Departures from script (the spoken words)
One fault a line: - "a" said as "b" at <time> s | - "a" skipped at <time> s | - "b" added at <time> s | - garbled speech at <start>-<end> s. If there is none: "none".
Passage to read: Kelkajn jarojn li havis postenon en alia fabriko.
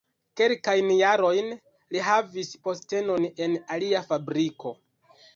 none